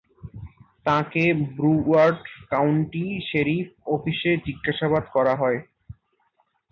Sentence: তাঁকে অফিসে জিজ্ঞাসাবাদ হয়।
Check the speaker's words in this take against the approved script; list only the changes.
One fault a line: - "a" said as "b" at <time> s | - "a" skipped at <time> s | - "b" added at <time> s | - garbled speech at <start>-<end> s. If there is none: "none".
- "ব্রুওয়ার্ড কাউন্টি শেরিফ" added at 1.6 s
- "করা" added at 5.1 s